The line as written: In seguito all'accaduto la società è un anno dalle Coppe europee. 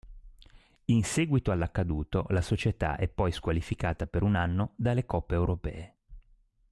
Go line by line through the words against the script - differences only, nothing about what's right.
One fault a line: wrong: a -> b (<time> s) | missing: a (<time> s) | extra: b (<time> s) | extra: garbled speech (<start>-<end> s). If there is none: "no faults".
extra: poi squalificata per (3.1 s)